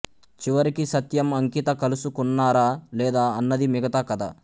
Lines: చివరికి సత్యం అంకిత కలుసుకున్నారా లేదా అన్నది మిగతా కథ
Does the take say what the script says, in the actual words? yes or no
yes